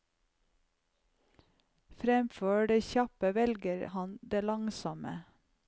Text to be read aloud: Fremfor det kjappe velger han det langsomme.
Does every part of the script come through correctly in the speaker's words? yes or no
yes